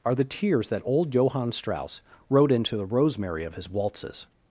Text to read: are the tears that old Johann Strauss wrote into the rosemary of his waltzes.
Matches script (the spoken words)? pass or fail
pass